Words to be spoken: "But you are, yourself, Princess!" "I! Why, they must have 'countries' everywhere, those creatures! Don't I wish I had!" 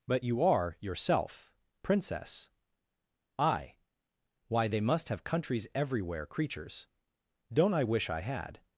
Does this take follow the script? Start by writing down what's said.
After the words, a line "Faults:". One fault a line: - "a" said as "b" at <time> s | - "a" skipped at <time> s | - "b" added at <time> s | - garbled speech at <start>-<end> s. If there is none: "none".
"But you are, yourself, Princess!" "I! Why, they must have 'countries' everywhere, creatures! Don't I wish I had!"
Faults:
- "those" skipped at 6.3 s